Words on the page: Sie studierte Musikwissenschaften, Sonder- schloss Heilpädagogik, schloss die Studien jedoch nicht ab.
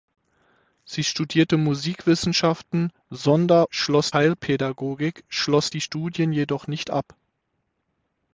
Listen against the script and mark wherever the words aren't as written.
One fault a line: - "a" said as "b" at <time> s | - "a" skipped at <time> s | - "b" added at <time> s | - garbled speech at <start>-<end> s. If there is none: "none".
none